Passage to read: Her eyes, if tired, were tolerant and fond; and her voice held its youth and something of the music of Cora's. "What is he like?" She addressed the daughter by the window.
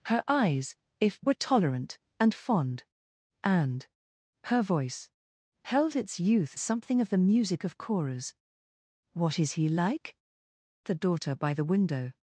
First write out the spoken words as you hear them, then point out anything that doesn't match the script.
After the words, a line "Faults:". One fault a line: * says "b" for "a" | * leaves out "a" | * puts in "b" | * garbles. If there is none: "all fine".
Her eyes, if were tolerant and fond; and her voice held its youth something of the music of Cora's. "What is he like?" The daughter by the window.
Faults:
* leaves out "tired"
* leaves out "and"
* leaves out "She addressed"